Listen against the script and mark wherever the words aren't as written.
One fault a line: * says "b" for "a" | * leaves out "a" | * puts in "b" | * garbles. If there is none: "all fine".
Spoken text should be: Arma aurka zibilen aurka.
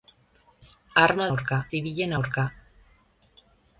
all fine